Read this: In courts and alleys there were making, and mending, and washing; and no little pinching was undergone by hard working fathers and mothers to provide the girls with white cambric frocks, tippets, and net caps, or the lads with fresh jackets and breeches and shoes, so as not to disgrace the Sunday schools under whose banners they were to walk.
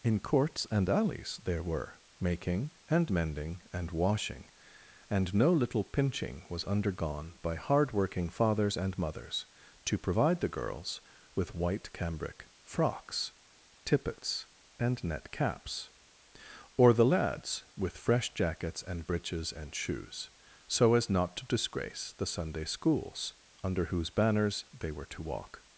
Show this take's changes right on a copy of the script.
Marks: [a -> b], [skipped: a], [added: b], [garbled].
In courts and alleys there were making, and mending, and washing; and no little pinching was undergone by hard working fathers and mothers to provide the girls with white cambric frocks, tippets, and net caps, or the lads with fresh jackets and breeches and shoes, so as not to disgrace the Sunday schools under whose banners they were to walk.